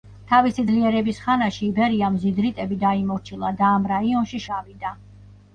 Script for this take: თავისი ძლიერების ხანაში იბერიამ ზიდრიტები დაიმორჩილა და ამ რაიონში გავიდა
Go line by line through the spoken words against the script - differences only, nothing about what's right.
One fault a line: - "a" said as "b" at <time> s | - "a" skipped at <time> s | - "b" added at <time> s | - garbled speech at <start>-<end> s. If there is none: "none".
none